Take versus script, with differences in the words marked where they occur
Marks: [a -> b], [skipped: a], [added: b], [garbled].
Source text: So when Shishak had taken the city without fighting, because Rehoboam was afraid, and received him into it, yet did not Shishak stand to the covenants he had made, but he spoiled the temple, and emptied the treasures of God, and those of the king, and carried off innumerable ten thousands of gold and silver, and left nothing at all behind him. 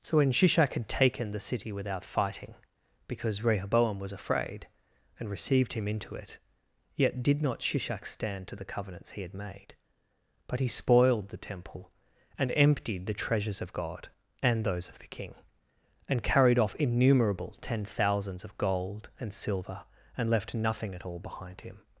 So when Shishak had taken the city without fighting, because Rehoboam was afraid, and received him into it, yet did not Shishak stand to the covenants he had made, but he spoiled the temple, and emptied the treasures of God, and those of the king, and carried off innumerable ten thousands of gold and silver, and left nothing at all behind him.